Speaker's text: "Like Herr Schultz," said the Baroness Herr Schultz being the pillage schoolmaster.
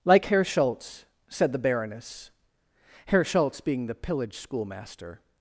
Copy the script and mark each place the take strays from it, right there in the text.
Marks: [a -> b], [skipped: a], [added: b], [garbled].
"Like Herr Schultz," said the Baroness Herr Schultz being the pillage schoolmaster.